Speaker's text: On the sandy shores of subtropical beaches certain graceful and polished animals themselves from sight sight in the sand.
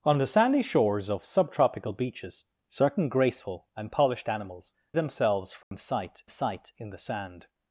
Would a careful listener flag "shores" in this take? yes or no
no